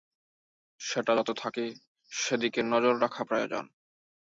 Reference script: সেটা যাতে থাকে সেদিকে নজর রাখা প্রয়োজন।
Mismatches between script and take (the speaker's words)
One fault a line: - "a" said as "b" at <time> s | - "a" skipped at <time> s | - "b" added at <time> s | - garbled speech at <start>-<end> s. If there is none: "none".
none